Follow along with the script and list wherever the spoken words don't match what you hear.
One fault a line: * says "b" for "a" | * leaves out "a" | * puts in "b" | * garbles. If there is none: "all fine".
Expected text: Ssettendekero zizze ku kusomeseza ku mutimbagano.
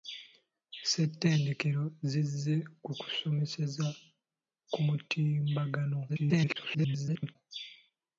* garbles